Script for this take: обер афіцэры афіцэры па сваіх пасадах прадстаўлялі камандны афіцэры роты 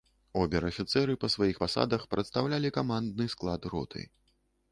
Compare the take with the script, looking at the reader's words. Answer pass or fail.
fail